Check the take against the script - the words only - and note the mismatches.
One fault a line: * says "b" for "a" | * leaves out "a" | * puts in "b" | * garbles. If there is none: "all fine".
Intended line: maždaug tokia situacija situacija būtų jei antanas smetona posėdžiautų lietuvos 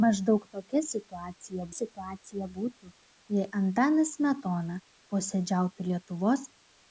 all fine